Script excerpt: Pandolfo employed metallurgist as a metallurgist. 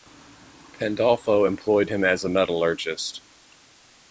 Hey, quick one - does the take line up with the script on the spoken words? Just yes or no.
no